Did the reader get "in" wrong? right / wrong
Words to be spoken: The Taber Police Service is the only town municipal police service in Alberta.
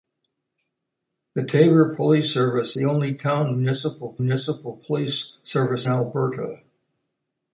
wrong